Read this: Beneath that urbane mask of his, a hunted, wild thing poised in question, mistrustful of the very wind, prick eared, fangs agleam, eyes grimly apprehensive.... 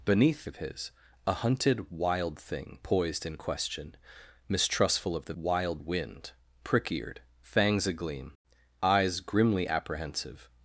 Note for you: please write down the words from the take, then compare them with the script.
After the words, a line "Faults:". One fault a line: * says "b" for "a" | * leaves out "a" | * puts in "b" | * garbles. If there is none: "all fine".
Beneath of his, a hunted, wild thing poised in question, mistrustful of the wild wind, prick eared, fangs agleam, eyes grimly apprehensive....
Faults:
* leaves out "that urbane mask"
* says "wild" for "very"